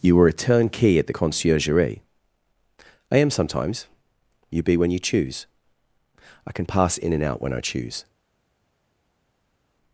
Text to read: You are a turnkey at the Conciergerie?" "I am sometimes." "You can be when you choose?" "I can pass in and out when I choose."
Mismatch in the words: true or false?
true